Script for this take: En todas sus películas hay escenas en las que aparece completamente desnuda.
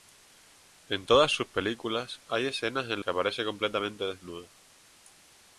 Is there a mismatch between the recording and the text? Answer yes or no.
yes